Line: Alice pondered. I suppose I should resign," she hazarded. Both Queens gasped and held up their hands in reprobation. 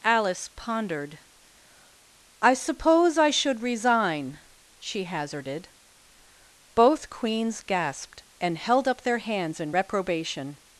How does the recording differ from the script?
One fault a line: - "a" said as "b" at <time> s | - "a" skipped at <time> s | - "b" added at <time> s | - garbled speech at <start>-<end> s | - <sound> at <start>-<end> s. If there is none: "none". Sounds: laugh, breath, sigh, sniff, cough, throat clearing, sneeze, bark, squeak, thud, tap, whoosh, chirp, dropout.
none